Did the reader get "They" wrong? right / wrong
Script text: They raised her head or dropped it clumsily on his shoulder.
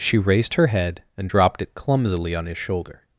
wrong